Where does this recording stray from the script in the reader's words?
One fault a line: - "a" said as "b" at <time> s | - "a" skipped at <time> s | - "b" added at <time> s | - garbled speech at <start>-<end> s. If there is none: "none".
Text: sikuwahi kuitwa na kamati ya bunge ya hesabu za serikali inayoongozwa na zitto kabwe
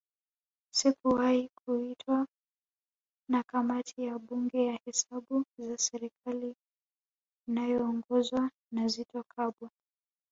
none